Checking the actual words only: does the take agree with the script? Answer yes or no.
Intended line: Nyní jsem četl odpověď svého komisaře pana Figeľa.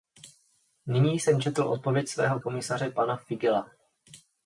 yes